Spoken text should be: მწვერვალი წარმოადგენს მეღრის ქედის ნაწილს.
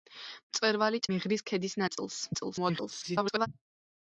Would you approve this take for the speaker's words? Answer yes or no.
no